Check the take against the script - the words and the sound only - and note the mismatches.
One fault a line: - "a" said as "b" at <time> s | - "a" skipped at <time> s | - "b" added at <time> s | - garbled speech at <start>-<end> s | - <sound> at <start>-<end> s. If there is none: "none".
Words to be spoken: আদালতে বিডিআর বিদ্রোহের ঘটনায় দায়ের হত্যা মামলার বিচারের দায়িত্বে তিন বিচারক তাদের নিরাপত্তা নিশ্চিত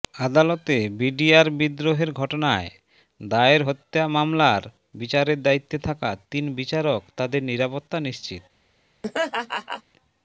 - "থাকা" added at 5.9 s
- laugh at 9.0-9.8 s